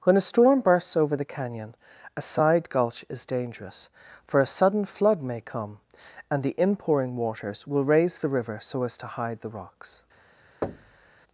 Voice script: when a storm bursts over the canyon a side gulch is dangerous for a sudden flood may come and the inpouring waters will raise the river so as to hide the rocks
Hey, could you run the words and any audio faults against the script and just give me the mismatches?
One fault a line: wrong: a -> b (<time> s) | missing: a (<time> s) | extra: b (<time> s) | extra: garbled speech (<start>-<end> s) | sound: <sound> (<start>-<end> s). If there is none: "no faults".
sound: thud (10.6-11.1 s)